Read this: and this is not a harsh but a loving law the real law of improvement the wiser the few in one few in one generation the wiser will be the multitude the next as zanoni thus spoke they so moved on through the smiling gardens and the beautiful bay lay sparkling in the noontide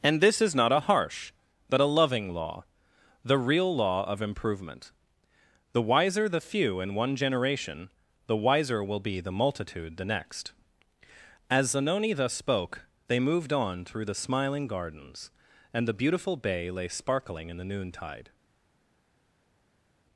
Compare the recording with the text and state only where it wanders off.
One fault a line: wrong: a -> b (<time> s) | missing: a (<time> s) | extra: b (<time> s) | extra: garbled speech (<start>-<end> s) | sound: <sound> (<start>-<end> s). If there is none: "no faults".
missing: few in one (7.2 s)
missing: so (13.2 s)